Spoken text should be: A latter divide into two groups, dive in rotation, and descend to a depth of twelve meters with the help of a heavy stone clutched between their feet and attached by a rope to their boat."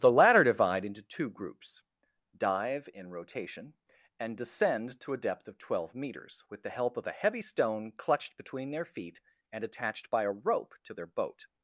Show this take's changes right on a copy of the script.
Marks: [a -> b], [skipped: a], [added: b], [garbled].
[A -> The] latter divide into two groups, dive in rotation, and descend to a depth of twelve meters with the help of a heavy stone clutched between their feet and attached by a rope to their boat."